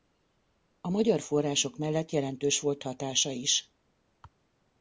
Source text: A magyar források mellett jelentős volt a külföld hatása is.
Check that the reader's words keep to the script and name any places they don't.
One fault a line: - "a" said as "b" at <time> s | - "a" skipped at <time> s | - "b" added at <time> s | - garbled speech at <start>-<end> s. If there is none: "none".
- "a külföld" skipped at 2.8 s